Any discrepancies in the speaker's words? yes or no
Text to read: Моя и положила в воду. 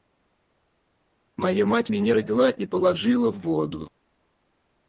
yes